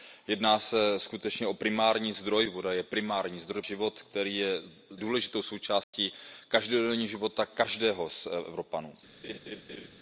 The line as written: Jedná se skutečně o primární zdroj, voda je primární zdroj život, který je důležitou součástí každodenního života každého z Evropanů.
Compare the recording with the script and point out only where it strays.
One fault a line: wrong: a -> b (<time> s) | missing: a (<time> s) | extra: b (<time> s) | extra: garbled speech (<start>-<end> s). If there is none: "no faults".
no faults